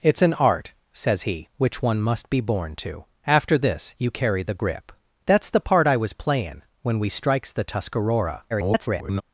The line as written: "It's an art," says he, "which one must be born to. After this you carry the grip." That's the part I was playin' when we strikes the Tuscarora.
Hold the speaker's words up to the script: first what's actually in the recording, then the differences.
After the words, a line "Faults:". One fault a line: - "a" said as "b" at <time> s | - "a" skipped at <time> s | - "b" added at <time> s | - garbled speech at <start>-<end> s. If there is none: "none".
"It's an art," says he, "which one must be born to. After this you carry the grip." That's the part I was playin' when we strikes the Tuscarora. [garbled]
Faults:
- garbled speech at 8.5-9.2 s